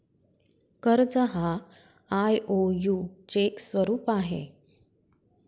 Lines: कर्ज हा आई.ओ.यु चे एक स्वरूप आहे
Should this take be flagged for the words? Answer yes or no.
yes